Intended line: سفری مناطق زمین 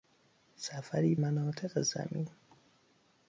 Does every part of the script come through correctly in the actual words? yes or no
yes